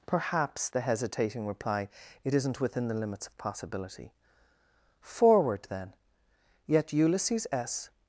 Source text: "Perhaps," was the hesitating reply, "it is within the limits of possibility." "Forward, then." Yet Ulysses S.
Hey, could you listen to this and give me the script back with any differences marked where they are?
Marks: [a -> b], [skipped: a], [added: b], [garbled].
"Perhaps," [skipped: was] the hesitating reply, "it [is -> isn't] within the limits of possibility." "Forward, then." Yet Ulysses S.